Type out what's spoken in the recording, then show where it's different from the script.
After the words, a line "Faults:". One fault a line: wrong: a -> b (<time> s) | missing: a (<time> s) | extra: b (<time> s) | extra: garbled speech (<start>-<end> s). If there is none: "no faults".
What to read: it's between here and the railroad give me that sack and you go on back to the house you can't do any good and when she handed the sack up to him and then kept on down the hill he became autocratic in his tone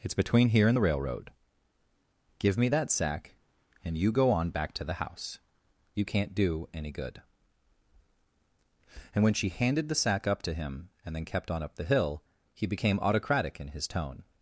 it's between here and the railroad give me that sack and you go on back to the house you can't do any good and when she handed the sack up to him and then kept on up the hill he became autocratic in his tone
Faults:
wrong: down -> up (11.6 s)